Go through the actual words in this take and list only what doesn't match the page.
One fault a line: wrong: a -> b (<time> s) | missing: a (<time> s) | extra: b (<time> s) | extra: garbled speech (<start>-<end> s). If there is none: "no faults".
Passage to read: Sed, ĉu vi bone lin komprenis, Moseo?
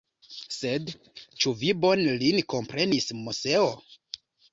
no faults